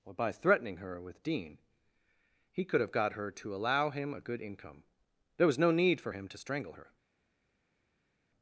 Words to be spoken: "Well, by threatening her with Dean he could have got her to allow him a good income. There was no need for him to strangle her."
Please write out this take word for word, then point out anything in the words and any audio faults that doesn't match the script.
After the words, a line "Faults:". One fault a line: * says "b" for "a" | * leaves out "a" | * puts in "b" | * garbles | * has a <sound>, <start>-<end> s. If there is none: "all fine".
"Or, by threatening her with Dean he could have got her to allow him a good income. There was no need for him to strangle her."
Faults:
* says "Or" for "Well"